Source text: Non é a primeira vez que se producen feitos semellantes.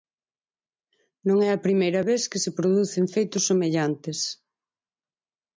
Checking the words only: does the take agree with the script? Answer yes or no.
yes